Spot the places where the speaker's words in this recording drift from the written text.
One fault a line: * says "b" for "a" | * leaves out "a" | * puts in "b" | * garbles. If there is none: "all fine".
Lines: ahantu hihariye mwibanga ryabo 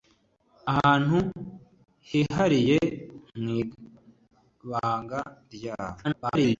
* garbles